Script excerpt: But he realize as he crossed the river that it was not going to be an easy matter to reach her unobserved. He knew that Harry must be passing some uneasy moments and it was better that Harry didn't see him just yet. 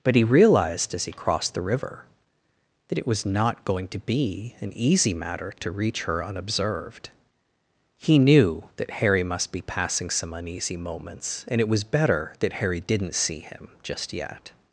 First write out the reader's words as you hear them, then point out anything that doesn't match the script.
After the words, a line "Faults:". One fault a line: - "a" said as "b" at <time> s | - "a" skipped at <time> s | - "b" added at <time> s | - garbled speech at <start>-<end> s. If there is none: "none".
But he realized as he crossed the river that it was not going to be an easy matter to reach her unobserved. He knew that Harry must be passing some uneasy moments and it was better that Harry didn't see him just yet.
Faults:
- "realize" said as "realized" at 0.2 s